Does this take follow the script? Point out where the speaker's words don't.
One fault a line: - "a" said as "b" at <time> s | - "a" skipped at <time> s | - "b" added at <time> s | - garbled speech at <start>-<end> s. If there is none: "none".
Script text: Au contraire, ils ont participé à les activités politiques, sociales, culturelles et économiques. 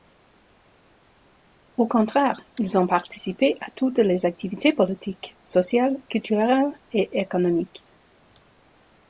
- "toutes" added at 3.7 s